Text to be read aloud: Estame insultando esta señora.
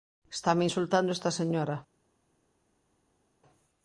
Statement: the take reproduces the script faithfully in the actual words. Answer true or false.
true